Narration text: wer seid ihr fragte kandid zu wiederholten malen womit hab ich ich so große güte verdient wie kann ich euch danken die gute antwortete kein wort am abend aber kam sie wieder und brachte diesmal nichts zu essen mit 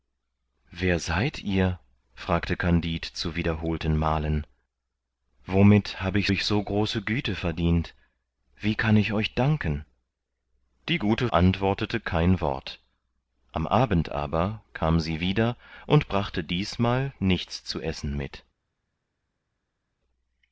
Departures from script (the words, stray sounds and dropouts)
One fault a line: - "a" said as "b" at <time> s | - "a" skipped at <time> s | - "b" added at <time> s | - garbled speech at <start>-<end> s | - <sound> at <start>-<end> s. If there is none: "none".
none